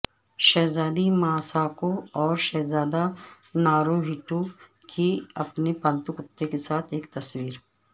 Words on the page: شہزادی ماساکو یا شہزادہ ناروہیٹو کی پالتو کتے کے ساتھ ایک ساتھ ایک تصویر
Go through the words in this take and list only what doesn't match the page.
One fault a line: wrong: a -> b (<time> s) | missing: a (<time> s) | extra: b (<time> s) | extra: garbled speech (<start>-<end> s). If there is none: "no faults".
wrong: یا -> اور (2.2 s)
extra: اپنے (5.4 s)
missing: ساتھ ایک (7.0 s)